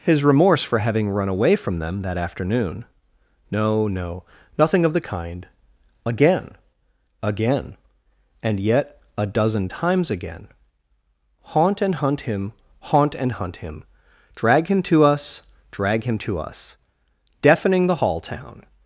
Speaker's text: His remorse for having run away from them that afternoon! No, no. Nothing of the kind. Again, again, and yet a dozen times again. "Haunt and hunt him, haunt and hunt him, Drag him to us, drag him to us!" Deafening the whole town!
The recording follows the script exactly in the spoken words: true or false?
false